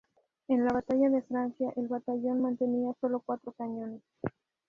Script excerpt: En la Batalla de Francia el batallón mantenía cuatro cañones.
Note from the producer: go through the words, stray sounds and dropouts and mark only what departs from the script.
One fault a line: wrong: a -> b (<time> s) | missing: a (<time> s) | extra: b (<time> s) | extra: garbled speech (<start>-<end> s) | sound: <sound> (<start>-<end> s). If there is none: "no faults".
extra: solo (3.0 s)